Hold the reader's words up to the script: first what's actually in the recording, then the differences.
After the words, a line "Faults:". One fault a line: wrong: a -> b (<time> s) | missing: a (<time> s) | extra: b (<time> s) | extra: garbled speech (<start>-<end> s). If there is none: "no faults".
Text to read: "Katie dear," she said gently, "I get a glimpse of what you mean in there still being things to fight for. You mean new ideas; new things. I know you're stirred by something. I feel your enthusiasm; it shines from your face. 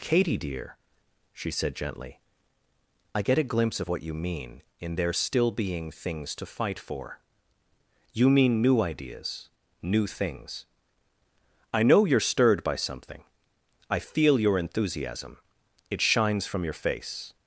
"Katie dear," she said gently, "I get a glimpse of what you mean in there still being things to fight for. You mean new ideas; new things. I know you're stirred by something. I feel your enthusiasm; it shines from your face.
Faults:
no faults